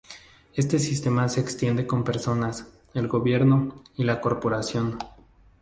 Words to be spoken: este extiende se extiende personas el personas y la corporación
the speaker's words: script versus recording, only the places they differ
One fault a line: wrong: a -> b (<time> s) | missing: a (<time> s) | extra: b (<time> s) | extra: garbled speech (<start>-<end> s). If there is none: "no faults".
wrong: extiende -> sistema (0.8 s)
extra: con (1.9 s)
wrong: personas -> gobierno (3.1 s)